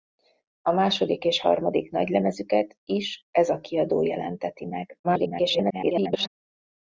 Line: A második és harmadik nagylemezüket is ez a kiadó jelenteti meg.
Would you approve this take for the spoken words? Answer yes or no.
no